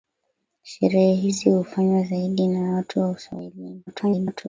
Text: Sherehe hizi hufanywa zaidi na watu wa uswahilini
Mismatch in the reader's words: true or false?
true